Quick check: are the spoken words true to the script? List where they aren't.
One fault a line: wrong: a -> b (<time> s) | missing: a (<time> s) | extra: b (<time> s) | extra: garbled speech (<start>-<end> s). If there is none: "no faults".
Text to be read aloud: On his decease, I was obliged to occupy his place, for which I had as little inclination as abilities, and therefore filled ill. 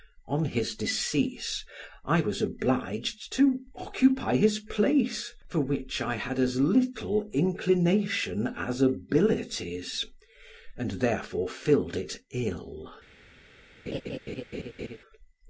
extra: it (12.0 s)